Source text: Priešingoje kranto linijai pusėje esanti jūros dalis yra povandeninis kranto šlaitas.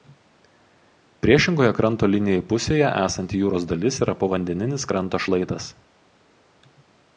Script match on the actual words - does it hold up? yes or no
yes